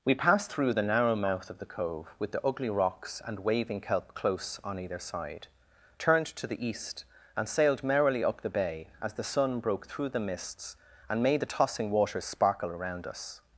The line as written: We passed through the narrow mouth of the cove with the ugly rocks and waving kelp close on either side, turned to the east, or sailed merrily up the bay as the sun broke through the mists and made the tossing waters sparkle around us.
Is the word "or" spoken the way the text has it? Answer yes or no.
no